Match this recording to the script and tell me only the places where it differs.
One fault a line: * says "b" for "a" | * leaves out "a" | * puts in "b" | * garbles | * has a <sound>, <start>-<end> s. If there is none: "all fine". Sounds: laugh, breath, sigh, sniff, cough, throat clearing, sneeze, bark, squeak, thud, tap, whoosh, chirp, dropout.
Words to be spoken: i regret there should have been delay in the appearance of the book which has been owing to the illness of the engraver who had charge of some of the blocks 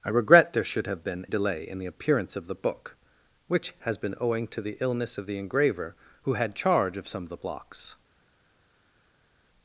all fine